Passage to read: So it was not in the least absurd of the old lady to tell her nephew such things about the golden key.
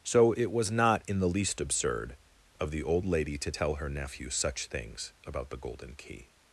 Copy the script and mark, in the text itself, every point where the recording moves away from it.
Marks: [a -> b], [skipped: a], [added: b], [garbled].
So it was not in the least absurd of the old lady to tell her nephew such things about the golden key.